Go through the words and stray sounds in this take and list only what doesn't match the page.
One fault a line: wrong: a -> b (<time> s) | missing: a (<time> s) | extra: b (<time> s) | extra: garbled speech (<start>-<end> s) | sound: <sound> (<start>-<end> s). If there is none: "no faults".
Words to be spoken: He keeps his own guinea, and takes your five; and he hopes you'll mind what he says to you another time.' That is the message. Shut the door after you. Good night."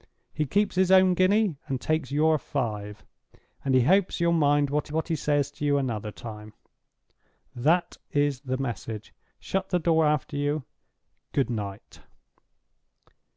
extra: what (4.9 s)